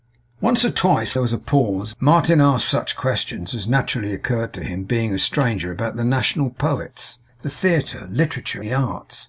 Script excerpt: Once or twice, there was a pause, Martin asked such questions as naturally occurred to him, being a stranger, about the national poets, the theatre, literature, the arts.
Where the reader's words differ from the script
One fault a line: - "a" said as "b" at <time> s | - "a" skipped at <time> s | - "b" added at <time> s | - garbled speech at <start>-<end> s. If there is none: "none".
none